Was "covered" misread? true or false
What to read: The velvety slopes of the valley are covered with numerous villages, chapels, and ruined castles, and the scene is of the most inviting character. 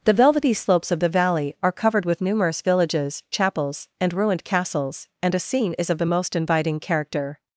false